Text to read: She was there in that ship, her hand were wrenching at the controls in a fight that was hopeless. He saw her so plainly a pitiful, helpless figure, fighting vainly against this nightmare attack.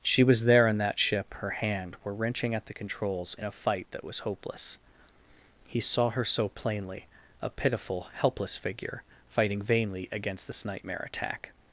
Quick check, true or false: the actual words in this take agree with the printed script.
true